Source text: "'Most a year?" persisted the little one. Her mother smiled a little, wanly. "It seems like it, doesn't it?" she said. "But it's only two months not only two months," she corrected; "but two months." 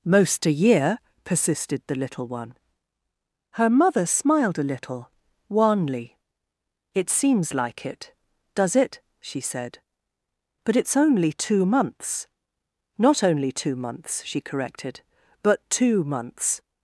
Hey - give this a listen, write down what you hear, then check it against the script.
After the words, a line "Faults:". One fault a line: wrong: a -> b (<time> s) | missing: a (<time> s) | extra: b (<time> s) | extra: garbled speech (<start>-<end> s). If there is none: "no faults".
"'Most a year?" persisted the little one. Her mother smiled a little, wanly. "It seems like it, does it?" she said. "But it's only two months not only two months," she corrected; "but two months."
Faults:
wrong: doesn't -> does (8.5 s)